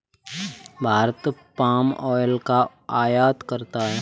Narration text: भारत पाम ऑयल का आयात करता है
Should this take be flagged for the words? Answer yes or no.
no